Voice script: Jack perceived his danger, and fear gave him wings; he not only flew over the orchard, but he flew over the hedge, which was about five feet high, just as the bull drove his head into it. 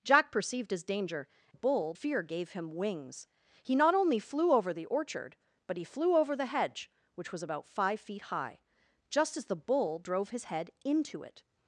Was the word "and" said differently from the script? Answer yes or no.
yes